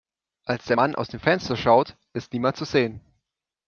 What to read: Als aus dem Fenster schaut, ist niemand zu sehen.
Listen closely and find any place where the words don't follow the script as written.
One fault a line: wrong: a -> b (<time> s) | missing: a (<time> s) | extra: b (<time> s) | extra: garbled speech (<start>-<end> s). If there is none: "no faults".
extra: der Mann (0.7 s)